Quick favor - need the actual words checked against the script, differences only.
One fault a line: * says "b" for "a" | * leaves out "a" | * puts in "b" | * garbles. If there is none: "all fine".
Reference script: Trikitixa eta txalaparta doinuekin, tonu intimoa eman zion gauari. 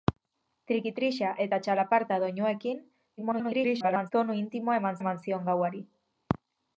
* garbles
* puts in "eman"